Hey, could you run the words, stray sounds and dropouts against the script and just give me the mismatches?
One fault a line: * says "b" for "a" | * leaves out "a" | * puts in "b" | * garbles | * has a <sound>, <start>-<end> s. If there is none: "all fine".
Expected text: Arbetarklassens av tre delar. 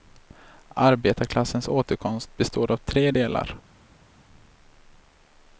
* puts in "återkomst består"